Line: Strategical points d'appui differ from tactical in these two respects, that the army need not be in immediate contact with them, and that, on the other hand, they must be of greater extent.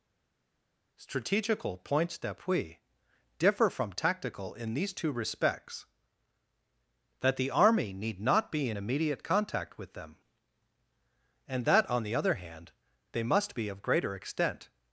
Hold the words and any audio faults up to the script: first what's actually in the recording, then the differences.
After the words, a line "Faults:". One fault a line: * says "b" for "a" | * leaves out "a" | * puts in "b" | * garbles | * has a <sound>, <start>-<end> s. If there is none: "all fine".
Strategical points d'appui differ from tactical in these two respects, that the army need not be in immediate contact with them, and that, on the other hand, they must be of greater extent.
Faults:
all fine